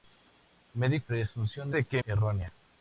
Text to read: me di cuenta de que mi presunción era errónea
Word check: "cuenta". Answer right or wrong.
wrong